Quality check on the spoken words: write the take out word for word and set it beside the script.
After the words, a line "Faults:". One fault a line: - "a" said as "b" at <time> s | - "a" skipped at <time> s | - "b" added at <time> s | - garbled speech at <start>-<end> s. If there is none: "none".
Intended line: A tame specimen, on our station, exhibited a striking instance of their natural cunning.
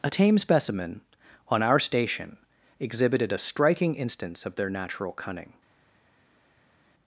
A tame specimen, on our station, exhibited a striking instance of their natural cunning.
Faults:
none